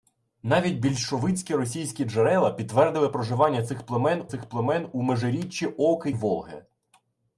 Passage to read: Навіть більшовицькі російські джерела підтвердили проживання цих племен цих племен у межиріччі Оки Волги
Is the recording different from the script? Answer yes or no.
no